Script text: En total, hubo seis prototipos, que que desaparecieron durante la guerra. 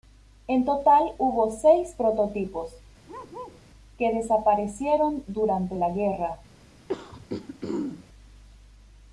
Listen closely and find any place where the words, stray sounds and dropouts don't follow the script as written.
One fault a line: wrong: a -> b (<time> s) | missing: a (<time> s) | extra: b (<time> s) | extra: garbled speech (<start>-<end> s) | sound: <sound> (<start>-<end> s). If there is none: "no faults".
sound: bark (3.1-3.6 s)
missing: que (4.1 s)
sound: throat clearing (6.9-8.0 s)